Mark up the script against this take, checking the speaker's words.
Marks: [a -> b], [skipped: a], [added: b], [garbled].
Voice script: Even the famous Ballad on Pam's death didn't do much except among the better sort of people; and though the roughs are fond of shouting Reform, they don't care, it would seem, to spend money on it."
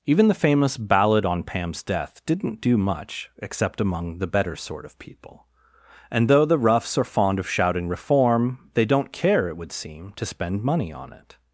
Even the famous Ballad on Pam's death didn't do much except among the better sort of people; and though the roughs are fond of shouting Reform, they don't care, it would seem, to spend money on it."